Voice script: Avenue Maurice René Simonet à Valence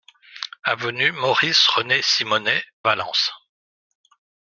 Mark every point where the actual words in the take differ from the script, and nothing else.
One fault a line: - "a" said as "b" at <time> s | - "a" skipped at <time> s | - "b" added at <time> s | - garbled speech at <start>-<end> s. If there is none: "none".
- "à" skipped at 2.6 s